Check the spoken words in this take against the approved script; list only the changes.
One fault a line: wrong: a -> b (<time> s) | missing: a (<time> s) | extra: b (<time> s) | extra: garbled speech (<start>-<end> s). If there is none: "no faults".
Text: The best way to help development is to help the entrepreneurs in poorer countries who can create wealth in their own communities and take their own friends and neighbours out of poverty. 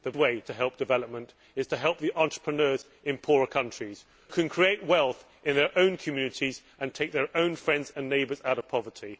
missing: best (0.1 s)
missing: who (4.0 s)